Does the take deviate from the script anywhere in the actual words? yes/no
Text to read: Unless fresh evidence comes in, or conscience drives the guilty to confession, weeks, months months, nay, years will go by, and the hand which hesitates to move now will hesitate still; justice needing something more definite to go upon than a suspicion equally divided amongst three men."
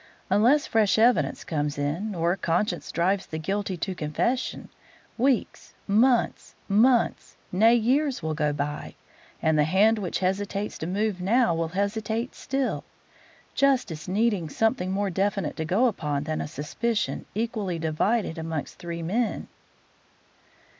no